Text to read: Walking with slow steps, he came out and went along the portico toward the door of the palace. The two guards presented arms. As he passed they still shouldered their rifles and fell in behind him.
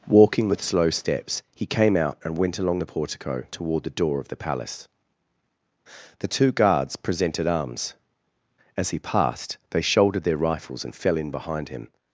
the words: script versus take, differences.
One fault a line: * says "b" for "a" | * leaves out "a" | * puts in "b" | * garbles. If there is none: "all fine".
* leaves out "still"